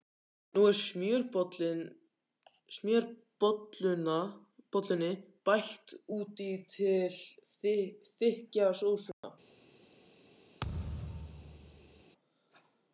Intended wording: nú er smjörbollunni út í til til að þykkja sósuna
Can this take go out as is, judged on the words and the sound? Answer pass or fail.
fail